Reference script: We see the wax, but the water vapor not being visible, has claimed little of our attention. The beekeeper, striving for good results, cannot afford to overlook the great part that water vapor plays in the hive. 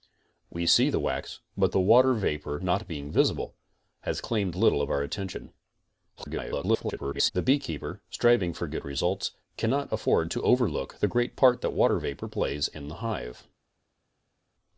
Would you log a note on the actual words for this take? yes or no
yes